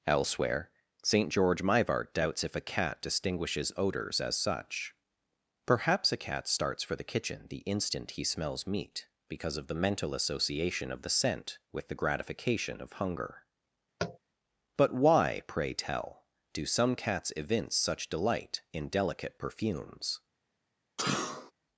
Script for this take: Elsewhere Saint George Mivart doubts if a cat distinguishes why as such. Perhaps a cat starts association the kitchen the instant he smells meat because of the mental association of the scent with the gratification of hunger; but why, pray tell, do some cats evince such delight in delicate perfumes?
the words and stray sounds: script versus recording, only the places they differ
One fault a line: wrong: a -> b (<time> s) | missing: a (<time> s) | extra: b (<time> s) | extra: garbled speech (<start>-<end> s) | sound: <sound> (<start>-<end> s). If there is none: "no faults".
wrong: why -> odors (3.8 s)
wrong: association -> for (6.8 s)
sound: tap (14.0-14.2 s)
sound: sneeze (21.0-21.5 s)